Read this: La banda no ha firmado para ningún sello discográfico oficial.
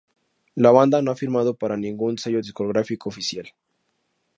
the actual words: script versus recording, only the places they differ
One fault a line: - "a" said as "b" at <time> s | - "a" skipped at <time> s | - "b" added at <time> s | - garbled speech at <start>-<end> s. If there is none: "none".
none